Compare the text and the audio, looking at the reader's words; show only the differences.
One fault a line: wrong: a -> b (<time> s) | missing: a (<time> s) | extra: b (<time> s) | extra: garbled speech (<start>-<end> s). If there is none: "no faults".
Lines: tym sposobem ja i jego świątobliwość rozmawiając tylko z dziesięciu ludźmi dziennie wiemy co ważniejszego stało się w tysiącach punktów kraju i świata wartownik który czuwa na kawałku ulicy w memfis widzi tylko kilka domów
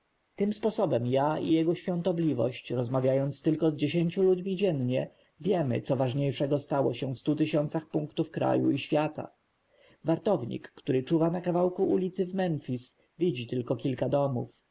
extra: stu (7.2 s)